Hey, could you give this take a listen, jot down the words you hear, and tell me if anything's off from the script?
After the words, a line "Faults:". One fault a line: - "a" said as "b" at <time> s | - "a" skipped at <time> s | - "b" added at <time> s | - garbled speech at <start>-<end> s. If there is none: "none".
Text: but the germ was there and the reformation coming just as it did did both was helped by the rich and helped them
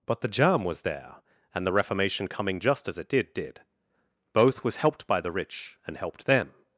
but the germ was there and the reformation coming just as it did did both was helped by the rich and helped them
Faults:
none